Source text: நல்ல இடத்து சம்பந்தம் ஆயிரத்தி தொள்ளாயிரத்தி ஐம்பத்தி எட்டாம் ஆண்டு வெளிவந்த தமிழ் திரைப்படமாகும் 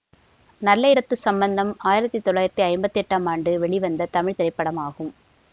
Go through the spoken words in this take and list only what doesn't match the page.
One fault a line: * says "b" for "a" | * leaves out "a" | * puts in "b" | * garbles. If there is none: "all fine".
all fine